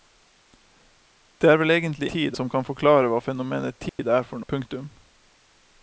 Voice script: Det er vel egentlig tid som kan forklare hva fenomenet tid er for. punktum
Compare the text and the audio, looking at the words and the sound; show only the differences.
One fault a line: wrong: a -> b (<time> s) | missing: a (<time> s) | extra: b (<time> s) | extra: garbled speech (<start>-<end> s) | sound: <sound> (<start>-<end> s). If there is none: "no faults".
sound: dropout (3.9-4.0 s)